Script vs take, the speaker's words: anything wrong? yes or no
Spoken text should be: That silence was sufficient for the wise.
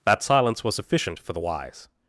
no